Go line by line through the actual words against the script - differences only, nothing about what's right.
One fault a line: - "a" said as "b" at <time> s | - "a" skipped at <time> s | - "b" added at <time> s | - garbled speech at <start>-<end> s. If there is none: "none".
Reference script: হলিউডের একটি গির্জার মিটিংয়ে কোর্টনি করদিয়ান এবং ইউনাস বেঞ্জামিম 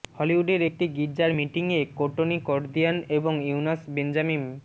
none